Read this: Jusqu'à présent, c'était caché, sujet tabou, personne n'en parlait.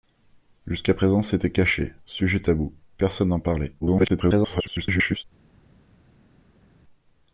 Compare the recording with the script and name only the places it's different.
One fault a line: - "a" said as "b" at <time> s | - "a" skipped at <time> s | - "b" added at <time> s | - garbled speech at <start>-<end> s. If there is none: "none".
- garbled speech at 3.8-5.2 s